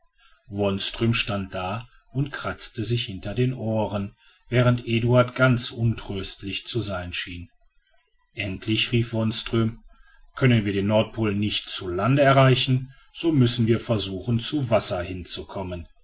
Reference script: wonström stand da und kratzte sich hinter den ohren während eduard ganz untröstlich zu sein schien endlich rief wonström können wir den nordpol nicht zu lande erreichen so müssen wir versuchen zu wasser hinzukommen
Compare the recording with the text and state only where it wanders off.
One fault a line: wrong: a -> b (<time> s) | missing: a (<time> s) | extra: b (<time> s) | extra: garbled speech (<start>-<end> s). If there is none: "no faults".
no faults